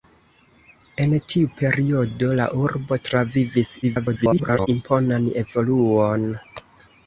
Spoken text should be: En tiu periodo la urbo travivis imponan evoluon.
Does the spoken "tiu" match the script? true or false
true